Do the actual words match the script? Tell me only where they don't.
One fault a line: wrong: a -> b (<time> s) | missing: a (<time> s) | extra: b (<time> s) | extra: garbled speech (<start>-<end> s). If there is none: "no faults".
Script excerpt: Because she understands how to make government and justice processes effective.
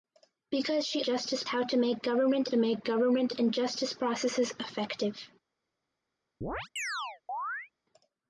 wrong: understands -> justice (1.0 s)
extra: make government (2.5 s)